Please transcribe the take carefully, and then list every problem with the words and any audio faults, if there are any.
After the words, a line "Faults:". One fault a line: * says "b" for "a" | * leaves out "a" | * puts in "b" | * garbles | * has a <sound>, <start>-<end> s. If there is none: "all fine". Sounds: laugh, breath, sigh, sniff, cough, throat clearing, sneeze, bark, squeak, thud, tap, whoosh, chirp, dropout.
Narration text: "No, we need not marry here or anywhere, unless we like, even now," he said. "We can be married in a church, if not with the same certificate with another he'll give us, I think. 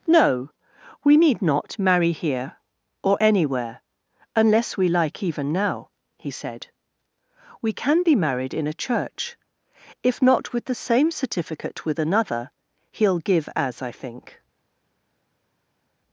"No, we need not marry here or anywhere, unless we like, even now," he said. "We can be married in a church, if not with the same certificate with another he'll give as, I think.
Faults:
* says "as" for "us"